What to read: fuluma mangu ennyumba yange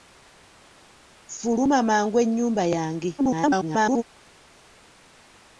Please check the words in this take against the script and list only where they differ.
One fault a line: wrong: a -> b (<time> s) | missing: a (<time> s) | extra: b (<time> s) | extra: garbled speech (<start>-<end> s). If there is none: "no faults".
extra: garbled speech (3.2-4.0 s)